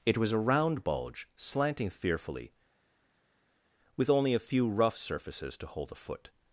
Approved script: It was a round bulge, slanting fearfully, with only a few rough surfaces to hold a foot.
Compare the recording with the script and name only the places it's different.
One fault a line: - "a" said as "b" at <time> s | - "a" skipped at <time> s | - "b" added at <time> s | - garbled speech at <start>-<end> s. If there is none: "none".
none